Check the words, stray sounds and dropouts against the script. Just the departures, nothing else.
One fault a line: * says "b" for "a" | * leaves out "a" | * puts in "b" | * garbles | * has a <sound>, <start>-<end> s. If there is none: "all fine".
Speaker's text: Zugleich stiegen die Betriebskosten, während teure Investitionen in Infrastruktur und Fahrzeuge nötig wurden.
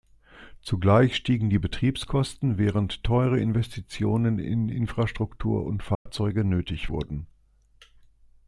* has a dropout, 5.9-6.1 s